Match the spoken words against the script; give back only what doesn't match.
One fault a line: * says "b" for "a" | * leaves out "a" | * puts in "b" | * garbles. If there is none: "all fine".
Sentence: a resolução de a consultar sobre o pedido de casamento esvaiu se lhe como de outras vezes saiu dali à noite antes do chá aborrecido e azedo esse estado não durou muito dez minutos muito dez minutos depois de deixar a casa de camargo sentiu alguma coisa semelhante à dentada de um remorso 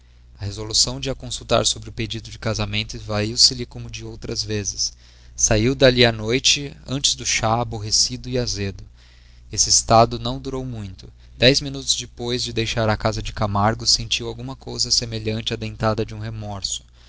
* leaves out "muito dez minutos"